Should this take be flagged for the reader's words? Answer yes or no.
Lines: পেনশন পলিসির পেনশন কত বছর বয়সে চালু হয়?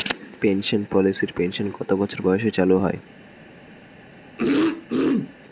no